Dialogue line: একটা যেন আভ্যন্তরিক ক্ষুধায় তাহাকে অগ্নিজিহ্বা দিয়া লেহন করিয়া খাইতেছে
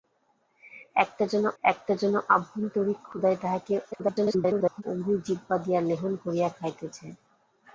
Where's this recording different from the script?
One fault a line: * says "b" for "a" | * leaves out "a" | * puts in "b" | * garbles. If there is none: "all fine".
* puts in "একটা যেন"
* garbles